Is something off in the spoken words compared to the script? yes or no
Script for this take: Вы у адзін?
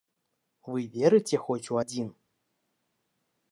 yes